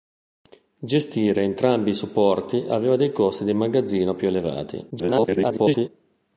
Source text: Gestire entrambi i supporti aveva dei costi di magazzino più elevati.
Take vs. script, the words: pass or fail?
fail